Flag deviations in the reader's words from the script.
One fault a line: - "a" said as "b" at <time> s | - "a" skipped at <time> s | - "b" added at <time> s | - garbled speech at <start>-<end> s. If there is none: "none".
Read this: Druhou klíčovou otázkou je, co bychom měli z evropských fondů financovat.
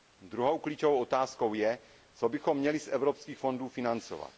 none